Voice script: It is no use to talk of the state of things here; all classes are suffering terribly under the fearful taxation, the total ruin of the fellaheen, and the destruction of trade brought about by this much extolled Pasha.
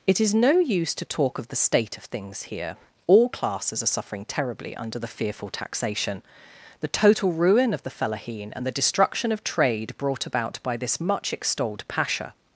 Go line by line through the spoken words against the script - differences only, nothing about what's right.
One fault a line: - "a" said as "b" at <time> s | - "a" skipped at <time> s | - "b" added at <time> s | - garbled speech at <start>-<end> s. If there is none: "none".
none